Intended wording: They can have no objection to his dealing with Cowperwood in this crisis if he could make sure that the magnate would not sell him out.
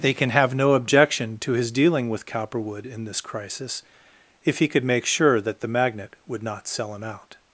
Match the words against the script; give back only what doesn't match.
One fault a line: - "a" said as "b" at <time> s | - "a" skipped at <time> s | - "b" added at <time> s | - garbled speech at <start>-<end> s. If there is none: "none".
none